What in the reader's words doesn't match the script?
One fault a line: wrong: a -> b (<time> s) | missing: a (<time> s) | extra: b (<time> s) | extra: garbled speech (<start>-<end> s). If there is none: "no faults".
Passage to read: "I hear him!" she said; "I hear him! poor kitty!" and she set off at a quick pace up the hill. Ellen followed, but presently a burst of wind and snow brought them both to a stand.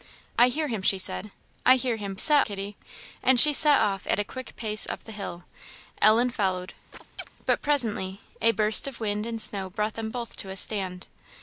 wrong: poor -> set (2.2 s)